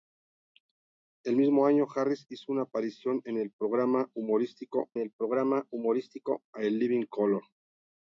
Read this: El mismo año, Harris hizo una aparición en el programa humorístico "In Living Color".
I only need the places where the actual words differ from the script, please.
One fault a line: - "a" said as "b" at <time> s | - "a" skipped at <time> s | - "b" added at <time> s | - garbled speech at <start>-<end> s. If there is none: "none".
- "el programa humorístico" added at 5.0 s